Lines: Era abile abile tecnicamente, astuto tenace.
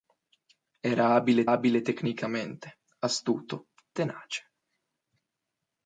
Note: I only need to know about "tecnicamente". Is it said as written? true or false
true